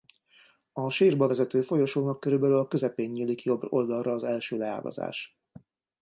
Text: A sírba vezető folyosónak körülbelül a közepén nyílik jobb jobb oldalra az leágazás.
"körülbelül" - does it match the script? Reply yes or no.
yes